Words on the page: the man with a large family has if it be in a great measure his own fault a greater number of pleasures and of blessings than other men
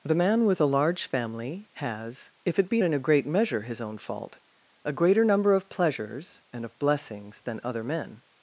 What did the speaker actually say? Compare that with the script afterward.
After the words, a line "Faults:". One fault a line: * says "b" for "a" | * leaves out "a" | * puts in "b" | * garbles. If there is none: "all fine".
the man with a large family has if it be in a great measure his own fault a greater number of pleasures and of blessings than other men
Faults:
all fine